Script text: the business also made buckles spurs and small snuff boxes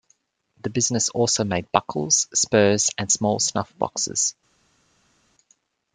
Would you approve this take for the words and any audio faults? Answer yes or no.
yes